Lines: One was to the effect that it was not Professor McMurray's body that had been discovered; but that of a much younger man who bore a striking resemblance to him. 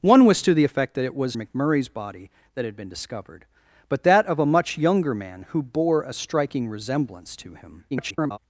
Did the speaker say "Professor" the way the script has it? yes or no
no